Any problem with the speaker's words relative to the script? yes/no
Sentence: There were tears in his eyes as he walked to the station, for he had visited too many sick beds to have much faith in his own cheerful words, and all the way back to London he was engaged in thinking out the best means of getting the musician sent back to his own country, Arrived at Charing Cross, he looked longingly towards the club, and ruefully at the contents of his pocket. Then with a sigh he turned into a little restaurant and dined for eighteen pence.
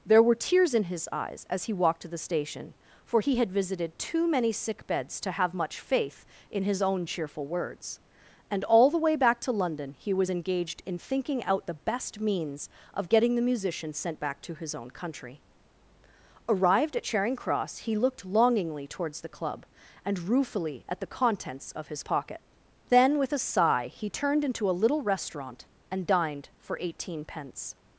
no